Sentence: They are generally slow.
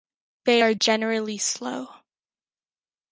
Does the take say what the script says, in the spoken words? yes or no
yes